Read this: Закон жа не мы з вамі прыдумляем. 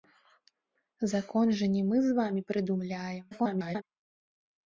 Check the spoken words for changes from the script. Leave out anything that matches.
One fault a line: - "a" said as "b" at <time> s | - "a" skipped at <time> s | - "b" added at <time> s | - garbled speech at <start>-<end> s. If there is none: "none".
- garbled speech at 3.3-3.8 s